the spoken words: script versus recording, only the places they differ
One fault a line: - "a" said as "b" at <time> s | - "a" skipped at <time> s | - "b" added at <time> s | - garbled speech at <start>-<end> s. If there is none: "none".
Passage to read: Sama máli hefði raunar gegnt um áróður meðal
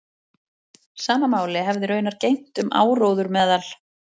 none